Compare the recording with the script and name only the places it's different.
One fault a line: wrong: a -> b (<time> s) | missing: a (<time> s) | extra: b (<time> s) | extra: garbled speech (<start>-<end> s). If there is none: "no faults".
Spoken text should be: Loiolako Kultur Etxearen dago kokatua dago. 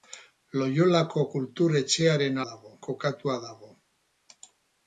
no faults